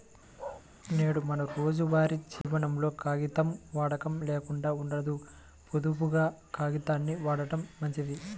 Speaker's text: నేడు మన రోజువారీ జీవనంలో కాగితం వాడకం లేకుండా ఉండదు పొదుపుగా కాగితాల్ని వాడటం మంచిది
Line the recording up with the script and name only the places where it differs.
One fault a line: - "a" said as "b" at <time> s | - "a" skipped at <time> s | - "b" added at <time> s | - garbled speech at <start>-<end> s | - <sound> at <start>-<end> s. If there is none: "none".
- bark at 0.4-0.6 s
- dropout at 2.4-2.4 s